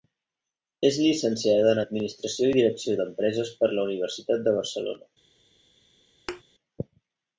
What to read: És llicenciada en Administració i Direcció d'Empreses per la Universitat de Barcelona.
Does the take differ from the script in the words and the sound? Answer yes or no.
yes